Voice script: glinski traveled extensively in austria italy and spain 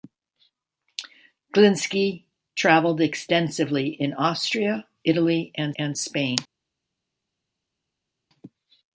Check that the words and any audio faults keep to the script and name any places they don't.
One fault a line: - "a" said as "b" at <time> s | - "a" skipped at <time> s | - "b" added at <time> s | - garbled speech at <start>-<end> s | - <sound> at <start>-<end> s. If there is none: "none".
- "and" added at 5.7 s